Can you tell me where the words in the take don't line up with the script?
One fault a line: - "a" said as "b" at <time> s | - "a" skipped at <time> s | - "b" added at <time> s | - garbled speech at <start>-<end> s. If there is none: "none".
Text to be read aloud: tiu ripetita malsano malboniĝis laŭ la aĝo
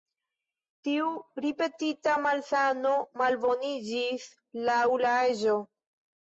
none